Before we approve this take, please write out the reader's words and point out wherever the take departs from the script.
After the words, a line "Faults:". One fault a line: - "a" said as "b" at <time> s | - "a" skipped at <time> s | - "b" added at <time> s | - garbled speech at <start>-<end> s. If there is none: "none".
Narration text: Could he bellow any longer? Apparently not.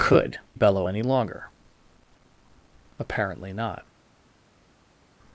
Could bellow any longer? Apparently not.
Faults:
- "he" skipped at 0.4 s